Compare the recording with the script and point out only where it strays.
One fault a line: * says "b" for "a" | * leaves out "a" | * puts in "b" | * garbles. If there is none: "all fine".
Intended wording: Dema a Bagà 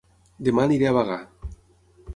* puts in "aniré"